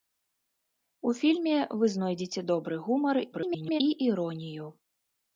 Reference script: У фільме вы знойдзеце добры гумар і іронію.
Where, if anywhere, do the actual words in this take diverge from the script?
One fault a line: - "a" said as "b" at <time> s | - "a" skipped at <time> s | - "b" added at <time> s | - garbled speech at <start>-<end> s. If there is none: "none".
- garbled speech at 3.3-3.8 s